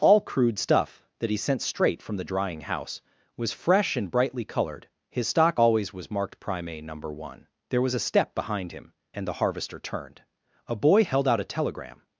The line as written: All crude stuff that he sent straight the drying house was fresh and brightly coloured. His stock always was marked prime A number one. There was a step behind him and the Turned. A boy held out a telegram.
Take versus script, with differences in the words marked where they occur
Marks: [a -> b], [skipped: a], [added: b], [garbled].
All crude stuff that he sent straight [added: from] the drying house was fresh and brightly coloured. His stock always was marked prime A number one. There was a step behind him and the [added: Harvester] Turned. A boy held out a telegram.